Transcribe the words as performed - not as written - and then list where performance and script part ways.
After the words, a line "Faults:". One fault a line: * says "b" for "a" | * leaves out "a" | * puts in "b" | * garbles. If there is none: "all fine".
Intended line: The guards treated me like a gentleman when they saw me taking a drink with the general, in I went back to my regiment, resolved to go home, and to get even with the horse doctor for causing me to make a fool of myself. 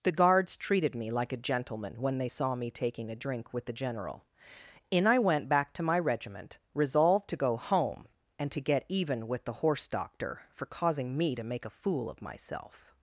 The guards treated me like a gentleman when they saw me taking a drink with the general, in I went back to my regiment, resolved to go home, and to get even with the horse doctor for causing me to make a fool of myself.
Faults:
all fine